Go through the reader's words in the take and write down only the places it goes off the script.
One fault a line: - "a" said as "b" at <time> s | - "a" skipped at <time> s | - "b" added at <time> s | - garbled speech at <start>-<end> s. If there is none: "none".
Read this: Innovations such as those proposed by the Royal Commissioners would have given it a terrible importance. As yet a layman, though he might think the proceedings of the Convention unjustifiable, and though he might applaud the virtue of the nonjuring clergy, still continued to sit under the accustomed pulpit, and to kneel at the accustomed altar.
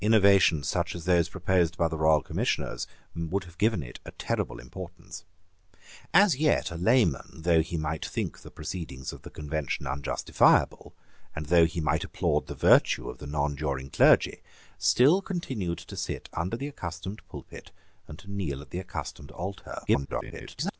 - garbled speech at 19.9-20.8 s